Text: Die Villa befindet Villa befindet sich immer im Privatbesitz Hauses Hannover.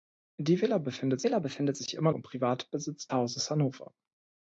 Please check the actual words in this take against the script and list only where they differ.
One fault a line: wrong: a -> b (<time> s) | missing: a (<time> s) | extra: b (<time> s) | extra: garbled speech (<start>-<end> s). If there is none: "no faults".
no faults